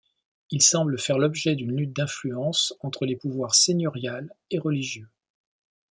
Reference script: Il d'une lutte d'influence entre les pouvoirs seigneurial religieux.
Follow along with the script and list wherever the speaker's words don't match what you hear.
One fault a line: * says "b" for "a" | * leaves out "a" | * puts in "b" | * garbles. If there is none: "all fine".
* puts in "semble faire l'objet"
* puts in "et"